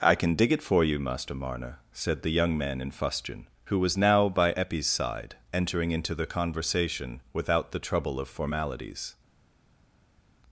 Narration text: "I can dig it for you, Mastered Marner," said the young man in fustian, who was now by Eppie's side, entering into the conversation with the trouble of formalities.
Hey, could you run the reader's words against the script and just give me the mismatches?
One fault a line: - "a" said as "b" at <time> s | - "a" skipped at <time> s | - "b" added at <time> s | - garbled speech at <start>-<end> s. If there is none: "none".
- "Mastered" said as "Master" at 1.0 s
- "with" said as "without" at 7.3 s